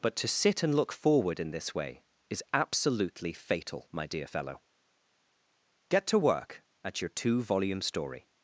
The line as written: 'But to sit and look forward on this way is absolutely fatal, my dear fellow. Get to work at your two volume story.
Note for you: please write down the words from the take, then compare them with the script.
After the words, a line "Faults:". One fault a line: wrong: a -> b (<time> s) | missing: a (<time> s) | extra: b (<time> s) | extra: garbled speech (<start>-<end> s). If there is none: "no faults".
'But to sit and look forward in this way is absolutely fatal, my dear fellow. Get to work at your two volume story.
Faults:
wrong: on -> in (1.4 s)